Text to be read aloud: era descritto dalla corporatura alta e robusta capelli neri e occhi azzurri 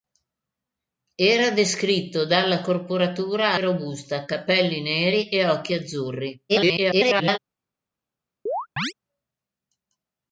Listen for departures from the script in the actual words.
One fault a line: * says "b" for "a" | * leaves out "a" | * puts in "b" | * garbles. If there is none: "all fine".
* leaves out "alta"
* garbles